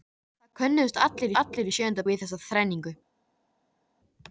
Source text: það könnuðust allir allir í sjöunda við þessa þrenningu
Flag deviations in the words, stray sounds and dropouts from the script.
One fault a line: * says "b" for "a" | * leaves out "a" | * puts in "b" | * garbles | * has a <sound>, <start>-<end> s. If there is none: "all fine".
all fine